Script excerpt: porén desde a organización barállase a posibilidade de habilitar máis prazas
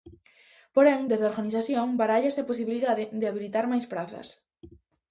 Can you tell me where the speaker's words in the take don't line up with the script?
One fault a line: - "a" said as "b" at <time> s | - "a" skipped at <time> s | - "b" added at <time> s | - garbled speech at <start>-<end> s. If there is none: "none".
none